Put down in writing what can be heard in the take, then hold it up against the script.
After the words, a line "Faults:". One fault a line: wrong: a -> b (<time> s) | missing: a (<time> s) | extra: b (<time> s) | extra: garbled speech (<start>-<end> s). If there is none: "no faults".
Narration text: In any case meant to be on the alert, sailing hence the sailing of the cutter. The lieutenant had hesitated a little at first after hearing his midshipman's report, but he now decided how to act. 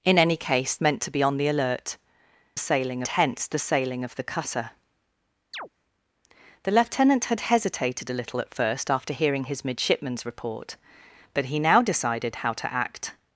In any case meant to be on the alert, sailing hence the sailing of the cutter. The lieutenant had hesitated a little at first after hearing his midshipman's report, but he now decided how to act.
Faults:
no faults